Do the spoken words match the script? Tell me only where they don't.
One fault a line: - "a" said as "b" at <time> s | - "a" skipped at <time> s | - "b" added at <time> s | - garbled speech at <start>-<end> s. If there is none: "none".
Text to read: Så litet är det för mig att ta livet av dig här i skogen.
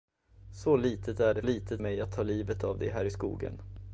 - "för" said as "litet" at 1.4 s